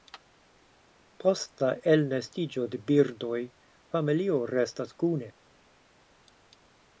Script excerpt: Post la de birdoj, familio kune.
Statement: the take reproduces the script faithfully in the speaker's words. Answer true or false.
false